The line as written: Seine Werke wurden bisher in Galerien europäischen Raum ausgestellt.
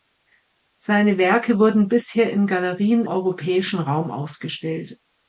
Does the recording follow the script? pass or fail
pass